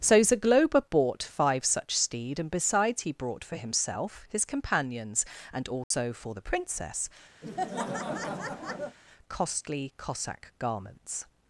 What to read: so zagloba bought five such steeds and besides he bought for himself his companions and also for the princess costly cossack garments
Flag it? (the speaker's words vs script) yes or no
yes